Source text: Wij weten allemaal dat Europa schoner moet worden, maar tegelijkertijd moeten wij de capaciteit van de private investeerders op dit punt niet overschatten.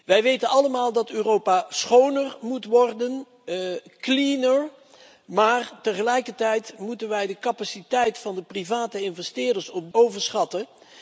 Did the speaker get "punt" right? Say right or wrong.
wrong